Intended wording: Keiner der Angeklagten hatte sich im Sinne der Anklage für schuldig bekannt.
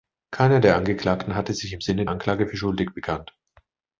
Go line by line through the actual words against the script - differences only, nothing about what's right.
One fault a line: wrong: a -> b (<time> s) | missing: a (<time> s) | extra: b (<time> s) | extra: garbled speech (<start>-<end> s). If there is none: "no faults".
missing: der (2.0 s)